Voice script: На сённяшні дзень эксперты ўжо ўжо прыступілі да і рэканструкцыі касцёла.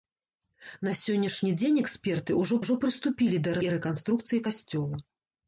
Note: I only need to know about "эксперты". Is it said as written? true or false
true